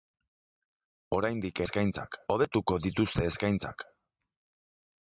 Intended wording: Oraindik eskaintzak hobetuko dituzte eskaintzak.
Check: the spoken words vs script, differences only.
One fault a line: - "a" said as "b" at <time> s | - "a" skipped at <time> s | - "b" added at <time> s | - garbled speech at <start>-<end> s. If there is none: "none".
none